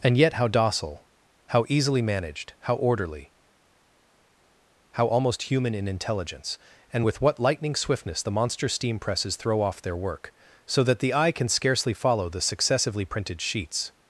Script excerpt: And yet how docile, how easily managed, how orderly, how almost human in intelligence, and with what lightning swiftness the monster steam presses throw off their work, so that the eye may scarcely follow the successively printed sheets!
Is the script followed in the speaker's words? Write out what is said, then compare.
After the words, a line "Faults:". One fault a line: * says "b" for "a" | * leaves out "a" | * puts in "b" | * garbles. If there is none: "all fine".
And yet how docile, how easily managed, how orderly, how almost human in intelligence, and with what lightning swiftness the monster steam presses throw off their work, so that the eye can scarcely follow the successively printed sheets!
Faults:
* says "can" for "may"